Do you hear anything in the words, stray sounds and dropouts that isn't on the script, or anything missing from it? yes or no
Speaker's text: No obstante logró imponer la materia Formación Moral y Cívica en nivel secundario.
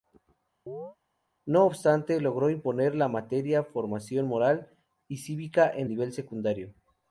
yes